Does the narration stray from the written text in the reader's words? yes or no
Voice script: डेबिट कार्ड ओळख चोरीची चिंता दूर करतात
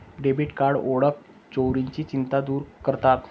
no